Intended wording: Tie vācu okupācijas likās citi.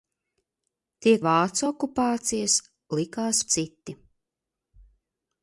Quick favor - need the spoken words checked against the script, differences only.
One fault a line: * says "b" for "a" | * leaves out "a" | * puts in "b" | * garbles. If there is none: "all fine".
all fine